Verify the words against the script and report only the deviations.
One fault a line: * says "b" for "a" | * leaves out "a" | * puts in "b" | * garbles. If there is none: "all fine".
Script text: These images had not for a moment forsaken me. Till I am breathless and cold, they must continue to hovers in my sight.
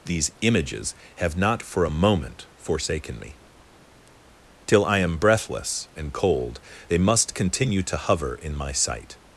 * says "have" for "had"
* says "hover" for "hovers"